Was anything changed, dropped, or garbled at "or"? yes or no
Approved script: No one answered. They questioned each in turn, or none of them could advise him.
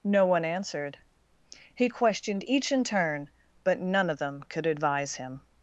yes